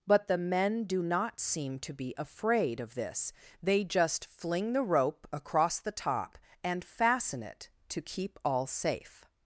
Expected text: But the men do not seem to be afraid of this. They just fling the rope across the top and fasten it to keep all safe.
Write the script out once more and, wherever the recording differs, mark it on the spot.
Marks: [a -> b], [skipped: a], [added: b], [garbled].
But the men do not seem to be afraid of this. They just fling the rope across the top and fasten it to keep all safe.